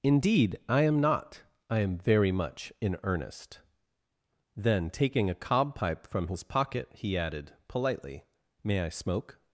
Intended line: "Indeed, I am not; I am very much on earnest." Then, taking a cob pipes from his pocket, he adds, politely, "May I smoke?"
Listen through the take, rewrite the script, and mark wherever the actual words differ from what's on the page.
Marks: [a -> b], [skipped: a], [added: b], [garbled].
"Indeed, I am not; I am very much [on -> in] earnest." Then, taking a cob [pipes -> pipe] from his pocket, he [adds, -> added] politely, "May I smoke?"